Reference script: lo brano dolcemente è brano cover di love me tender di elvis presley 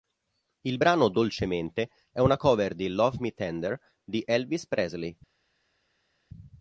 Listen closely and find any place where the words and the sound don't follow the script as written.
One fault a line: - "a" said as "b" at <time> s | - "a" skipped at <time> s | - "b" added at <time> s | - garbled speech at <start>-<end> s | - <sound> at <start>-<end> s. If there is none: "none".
- "lo" said as "il" at 0.6 s
- "brano" said as "una" at 2.2 s